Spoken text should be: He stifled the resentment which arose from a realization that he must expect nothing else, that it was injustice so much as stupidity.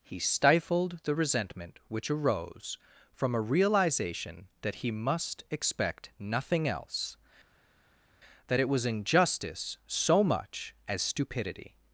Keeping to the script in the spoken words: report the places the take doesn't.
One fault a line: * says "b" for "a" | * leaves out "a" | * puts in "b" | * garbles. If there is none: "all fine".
all fine